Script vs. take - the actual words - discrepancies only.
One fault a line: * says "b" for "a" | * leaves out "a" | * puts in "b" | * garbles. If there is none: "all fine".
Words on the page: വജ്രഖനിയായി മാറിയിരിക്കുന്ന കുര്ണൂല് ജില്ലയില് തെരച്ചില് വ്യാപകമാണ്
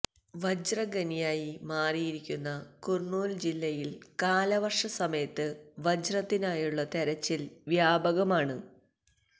* puts in "കാലവര്ഷ സമയത്ത് വജ്രത്തിനായുള്ള"